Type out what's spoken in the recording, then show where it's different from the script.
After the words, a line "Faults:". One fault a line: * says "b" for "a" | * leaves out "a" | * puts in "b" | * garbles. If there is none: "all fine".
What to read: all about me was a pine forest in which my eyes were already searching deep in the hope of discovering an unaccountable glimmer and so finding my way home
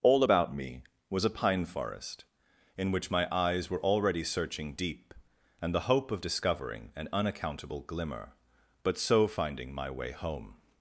all about me was a pine forest in which my eyes were already searching deep and the hope of discovering an unaccountable glimmer but so finding my way home
Faults:
* says "and" for "in"
* says "but" for "and"